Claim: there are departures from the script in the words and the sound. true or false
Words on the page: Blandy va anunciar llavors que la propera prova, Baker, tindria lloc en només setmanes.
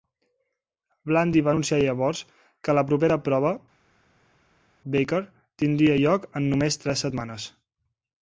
true